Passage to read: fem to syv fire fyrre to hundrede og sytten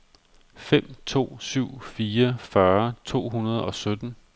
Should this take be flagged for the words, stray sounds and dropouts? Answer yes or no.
no